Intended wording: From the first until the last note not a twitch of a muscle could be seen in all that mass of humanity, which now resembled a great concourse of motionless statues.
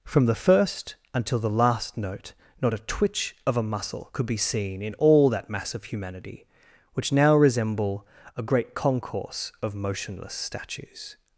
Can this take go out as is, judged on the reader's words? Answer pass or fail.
fail